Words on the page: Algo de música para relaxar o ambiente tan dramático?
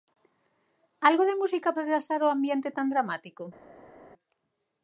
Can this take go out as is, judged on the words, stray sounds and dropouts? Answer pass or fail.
fail